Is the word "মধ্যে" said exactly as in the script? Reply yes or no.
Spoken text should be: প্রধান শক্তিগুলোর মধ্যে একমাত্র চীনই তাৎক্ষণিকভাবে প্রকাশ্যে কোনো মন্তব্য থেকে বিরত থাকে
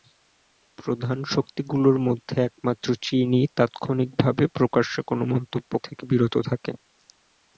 yes